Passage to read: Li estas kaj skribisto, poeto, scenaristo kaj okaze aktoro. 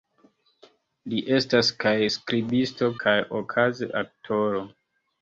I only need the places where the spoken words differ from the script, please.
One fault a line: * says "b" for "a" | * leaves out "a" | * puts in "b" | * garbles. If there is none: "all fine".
* leaves out "poeto scenaristo"